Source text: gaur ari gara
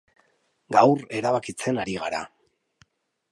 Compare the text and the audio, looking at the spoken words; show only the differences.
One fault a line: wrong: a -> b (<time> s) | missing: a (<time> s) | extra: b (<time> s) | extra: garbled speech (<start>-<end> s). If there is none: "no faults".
extra: erabakitzen (1.2 s)